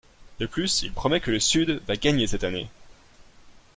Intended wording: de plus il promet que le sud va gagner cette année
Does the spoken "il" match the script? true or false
true